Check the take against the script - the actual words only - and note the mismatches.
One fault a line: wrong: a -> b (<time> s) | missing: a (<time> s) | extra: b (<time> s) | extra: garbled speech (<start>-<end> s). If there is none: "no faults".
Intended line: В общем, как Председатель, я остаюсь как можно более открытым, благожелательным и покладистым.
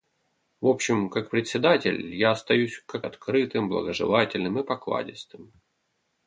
missing: можно более (3.0 s)